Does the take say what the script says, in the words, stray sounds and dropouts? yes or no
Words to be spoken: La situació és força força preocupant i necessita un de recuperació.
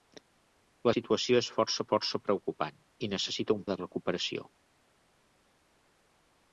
yes